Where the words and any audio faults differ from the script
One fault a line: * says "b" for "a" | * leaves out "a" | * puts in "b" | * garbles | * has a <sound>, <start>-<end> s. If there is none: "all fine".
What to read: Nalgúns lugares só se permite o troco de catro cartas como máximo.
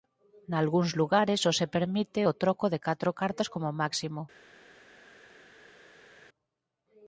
all fine